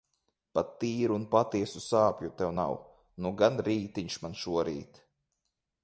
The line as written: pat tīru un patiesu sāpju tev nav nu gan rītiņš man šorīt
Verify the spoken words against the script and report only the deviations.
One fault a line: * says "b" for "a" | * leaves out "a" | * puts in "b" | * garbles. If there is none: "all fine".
all fine